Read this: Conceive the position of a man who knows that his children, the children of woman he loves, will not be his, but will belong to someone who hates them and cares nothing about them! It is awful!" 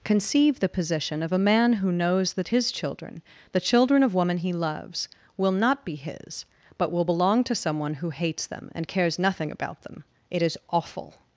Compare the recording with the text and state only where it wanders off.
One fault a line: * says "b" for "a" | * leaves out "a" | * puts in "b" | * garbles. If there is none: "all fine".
all fine